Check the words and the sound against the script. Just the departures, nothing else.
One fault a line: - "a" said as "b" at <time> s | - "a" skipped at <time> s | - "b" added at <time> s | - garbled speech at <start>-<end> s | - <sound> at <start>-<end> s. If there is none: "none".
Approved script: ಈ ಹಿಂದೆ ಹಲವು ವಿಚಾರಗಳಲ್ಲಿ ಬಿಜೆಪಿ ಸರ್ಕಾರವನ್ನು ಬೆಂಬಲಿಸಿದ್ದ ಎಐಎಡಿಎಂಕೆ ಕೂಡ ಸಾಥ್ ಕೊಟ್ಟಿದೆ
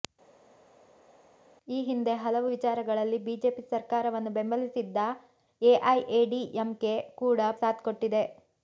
none